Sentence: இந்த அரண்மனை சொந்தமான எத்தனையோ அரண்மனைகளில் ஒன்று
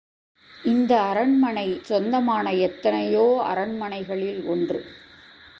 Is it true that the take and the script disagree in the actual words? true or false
false